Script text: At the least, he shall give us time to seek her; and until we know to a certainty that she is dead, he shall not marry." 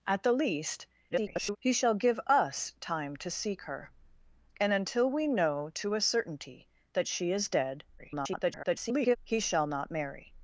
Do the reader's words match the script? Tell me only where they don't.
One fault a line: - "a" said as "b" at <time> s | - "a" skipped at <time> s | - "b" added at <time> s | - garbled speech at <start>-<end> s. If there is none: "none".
- garbled speech at 1.1-1.6 s
- garbled speech at 8.0-9.2 s